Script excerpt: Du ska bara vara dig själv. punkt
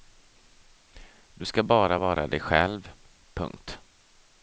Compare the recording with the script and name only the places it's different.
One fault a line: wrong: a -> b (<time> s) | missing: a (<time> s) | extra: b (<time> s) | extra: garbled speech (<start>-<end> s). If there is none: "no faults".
no faults